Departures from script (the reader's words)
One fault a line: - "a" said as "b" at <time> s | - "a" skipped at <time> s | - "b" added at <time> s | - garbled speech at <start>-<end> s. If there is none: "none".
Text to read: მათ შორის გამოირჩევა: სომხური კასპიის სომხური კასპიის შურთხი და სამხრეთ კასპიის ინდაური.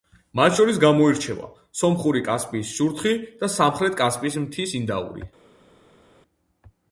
- "სომხური კასპიის" skipped at 2.7 s
- "მთის" added at 4.4 s